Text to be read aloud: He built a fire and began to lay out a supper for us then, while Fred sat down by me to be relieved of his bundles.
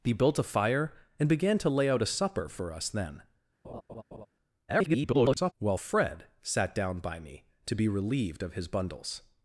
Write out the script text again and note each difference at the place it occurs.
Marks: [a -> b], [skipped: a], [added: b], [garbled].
He built a fire and began to lay out a supper for us then, [garbled] while Fred sat down by me to be relieved of his bundles.